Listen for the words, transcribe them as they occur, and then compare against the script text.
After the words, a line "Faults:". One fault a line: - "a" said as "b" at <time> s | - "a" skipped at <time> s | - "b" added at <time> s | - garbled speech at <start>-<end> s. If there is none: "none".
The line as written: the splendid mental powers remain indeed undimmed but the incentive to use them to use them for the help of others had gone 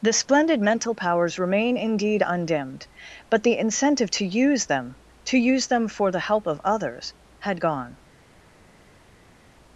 the splendid mental powers remain indeed undimmed but the incentive to use them to use them for the help of others had gone
Faults:
none